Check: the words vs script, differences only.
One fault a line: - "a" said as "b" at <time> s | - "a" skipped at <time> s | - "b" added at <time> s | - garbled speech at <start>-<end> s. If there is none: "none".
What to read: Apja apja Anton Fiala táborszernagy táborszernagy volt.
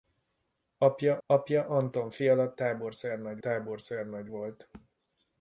none